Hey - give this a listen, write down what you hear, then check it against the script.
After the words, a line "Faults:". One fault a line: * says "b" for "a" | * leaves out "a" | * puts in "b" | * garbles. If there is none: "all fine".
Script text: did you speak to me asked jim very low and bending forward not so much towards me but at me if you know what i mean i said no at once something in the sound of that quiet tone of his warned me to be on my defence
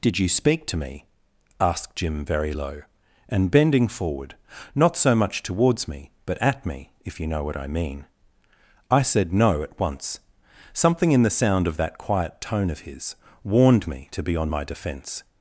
did you speak to me asked jim very low and bending forward not so much towards me but at me if you know what i mean i said no at once something in the sound of that quiet tone of his warned me to be on my defence
Faults:
all fine